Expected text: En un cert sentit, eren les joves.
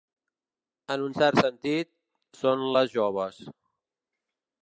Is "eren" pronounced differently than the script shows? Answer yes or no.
yes